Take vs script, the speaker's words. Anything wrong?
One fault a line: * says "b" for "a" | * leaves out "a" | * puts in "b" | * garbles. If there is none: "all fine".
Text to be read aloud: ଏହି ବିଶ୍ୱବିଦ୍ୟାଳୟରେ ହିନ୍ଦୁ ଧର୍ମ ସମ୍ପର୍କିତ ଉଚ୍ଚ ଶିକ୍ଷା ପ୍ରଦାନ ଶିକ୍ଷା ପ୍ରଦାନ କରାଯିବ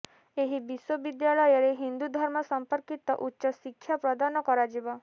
* leaves out "ଶିକ୍ଷା ପ୍ରଦାନ"